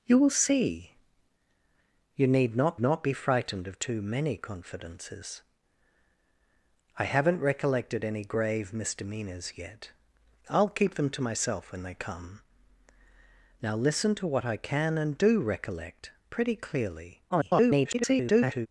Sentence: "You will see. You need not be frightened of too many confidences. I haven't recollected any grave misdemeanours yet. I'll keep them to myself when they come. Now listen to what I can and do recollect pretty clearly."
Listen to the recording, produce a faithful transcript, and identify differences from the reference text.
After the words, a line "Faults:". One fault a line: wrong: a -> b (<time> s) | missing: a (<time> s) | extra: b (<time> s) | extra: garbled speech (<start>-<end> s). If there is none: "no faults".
"You will see. You need not not be frightened of too many confidences. I haven't recollected any grave misdemeanours yet. I'll keep them to myself when they come. Now listen to what I can and do recollect pretty clearly." [garbled]
Faults:
extra: not (2.8 s)
extra: garbled speech (17.3-18.7 s)